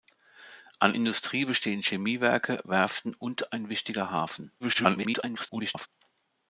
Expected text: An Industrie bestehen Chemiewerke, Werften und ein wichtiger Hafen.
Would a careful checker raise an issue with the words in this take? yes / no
yes